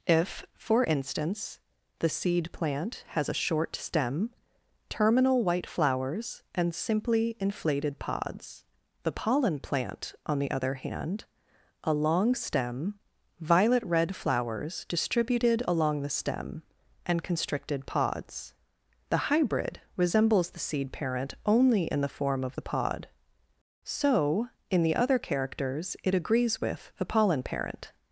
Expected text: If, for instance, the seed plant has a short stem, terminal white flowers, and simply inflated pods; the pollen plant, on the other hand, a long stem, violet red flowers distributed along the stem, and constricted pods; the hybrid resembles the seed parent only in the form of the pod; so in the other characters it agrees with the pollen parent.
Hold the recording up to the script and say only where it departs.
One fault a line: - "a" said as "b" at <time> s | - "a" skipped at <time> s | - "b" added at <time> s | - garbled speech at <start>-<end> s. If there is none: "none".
none